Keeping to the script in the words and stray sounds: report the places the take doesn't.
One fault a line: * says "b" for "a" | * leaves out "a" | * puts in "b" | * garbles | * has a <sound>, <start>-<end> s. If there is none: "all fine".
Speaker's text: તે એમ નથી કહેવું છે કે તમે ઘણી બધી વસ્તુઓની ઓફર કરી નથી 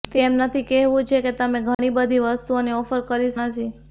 * has a dropout, 1.7-1.8 s